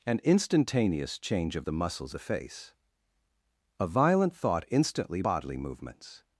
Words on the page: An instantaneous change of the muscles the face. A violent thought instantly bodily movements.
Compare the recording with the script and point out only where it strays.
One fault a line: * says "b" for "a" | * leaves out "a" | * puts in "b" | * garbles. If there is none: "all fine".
all fine